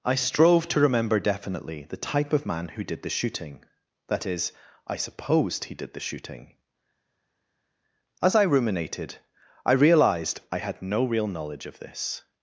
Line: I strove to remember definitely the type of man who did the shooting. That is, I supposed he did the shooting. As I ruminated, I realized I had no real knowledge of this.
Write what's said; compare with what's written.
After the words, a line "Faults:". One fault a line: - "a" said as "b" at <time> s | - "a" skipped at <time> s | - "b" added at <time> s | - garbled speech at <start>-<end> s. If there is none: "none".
I strove to remember definitely the type of man who did the shooting. That is, I supposed he did the shooting. As I ruminated, I realized I had no real knowledge of this.
Faults:
none